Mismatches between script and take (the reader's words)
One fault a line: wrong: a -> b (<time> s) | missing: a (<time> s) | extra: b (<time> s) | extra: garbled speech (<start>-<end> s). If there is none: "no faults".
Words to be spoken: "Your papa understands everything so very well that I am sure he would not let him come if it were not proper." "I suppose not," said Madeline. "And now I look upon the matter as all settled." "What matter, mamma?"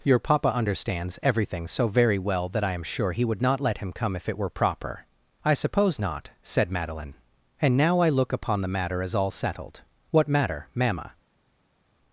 missing: not (4.5 s)